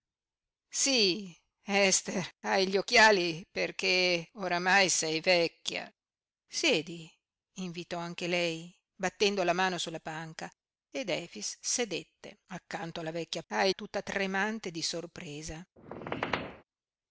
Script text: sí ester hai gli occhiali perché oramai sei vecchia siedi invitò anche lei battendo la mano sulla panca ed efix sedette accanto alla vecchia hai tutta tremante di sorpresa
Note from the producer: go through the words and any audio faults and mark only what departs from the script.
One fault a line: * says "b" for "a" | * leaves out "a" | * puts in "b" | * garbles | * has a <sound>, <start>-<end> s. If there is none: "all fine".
* has a squeak, 15.8-16.6 s